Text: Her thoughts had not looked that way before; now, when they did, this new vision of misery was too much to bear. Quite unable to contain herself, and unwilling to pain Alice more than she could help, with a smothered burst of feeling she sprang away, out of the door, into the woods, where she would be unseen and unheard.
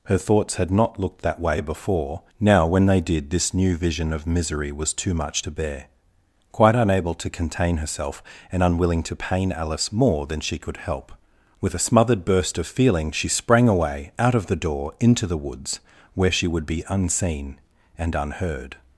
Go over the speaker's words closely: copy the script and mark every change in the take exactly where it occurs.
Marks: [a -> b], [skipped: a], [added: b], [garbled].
Her thoughts had not looked that way before; now, when they did, this new vision of misery was too much to bear. Quite unable to contain herself, and unwilling to pain Alice more than she could help, with a smothered burst of feeling she sprang away, out of the door, into the woods, where she would be unseen and unheard.